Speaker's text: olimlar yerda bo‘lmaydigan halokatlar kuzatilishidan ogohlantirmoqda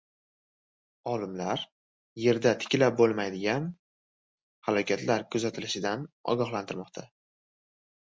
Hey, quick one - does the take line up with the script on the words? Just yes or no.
no